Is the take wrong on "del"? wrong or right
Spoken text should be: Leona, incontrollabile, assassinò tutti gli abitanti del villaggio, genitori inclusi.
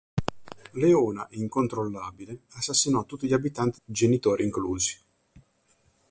wrong